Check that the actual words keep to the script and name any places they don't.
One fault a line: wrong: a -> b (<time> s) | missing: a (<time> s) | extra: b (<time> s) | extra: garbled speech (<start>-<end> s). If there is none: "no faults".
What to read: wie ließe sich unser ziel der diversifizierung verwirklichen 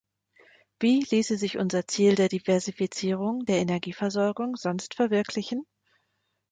extra: der energieversorgung sonst (3.4 s)